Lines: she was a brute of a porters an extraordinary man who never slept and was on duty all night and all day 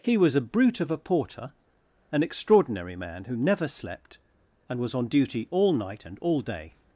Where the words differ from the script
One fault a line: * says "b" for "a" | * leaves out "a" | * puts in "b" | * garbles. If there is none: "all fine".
* says "he" for "she"
* says "porter" for "porters"